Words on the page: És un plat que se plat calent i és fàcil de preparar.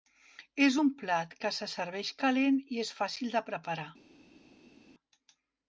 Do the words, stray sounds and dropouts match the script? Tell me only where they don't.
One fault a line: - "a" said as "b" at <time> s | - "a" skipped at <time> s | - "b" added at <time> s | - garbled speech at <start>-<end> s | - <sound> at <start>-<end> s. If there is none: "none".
- "plat" said as "serveix" at 1.7 s